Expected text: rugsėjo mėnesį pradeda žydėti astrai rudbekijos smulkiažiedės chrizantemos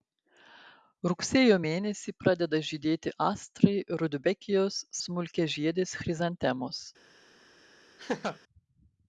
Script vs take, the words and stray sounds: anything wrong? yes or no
yes